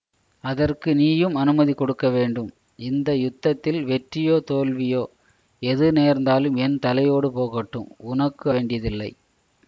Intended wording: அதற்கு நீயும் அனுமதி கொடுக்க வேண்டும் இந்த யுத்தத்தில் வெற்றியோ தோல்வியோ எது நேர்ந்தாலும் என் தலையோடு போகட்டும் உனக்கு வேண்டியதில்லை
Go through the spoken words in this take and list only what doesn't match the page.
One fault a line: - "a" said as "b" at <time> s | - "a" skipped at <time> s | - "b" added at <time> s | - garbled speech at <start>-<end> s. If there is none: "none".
none